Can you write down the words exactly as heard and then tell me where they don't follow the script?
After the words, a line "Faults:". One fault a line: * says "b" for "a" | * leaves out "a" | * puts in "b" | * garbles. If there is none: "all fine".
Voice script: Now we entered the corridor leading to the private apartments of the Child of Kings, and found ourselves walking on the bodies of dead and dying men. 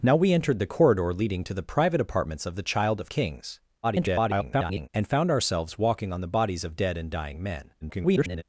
Now we entered the corridor leading to the private apartments of the Child of Kings, [garbled] and found ourselves walking on the bodies of dead and dying men. [garbled]
Faults:
* garbles
* garbles